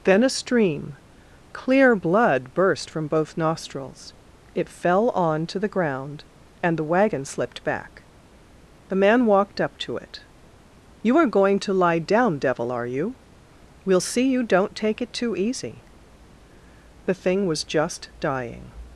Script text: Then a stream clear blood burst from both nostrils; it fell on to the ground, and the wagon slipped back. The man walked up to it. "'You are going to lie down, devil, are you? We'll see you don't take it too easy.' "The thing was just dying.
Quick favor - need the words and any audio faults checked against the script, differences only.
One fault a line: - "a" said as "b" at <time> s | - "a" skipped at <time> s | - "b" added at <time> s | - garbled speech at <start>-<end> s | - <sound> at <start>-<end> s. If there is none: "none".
none